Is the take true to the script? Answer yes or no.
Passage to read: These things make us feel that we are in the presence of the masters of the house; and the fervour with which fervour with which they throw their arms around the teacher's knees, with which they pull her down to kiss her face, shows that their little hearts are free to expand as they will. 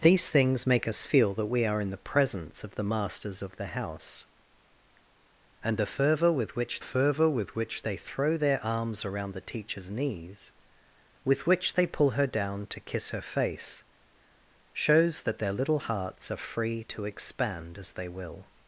yes